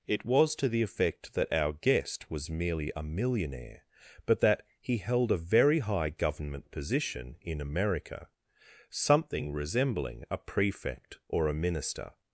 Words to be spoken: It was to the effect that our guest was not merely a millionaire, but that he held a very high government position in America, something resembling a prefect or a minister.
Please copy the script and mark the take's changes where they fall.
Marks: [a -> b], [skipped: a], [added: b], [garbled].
It was to the effect that our guest was [skipped: not] merely a millionaire, but that he held a very high government position in America, something resembling a prefect or a minister.